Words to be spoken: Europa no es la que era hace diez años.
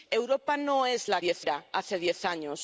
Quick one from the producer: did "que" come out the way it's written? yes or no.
no